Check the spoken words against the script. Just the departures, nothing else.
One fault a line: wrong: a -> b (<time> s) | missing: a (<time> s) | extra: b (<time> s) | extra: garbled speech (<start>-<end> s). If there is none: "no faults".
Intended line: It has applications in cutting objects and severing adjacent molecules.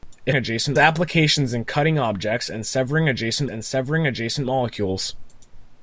wrong: has -> adjacent (0.3 s)
extra: and severing adjacent (3.5 s)